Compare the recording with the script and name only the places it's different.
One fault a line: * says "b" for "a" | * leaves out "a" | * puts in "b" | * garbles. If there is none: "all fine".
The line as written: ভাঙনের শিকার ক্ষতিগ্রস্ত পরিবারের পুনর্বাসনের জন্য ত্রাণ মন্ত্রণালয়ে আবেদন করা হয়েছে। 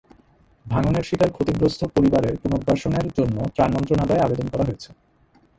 all fine